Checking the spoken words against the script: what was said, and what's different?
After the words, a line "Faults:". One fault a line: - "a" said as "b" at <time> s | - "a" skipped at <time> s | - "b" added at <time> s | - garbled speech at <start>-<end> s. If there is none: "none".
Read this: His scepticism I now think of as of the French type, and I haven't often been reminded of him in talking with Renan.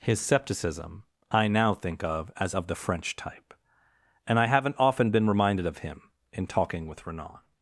His scepticism I now think of as of the French type, and I haven't often been reminded of him in talking with Renan.
Faults:
none